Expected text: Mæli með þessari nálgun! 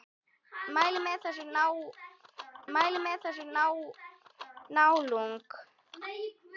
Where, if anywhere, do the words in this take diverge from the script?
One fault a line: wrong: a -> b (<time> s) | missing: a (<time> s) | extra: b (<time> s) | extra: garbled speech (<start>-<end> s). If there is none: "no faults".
extra: mæli með þessari (2.8 s)